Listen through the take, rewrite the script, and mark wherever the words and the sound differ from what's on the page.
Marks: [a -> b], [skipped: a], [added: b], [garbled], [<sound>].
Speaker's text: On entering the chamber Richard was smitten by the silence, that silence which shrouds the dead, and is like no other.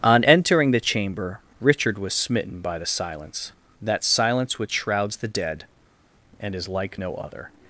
On entering the chamber Richard was smitten by the silence, that silence which shrouds the dead, and is like no other.